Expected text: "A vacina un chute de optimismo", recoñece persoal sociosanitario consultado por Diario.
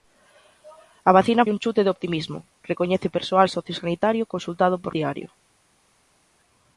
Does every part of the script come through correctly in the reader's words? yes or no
yes